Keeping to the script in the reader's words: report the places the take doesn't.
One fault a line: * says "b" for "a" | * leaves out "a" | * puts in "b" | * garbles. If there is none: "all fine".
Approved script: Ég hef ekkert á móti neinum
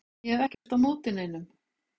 all fine